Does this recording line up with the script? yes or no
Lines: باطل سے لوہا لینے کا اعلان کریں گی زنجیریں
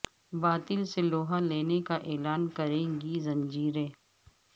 yes